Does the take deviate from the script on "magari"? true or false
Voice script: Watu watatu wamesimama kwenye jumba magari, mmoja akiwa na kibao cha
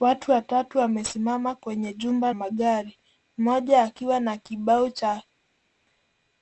false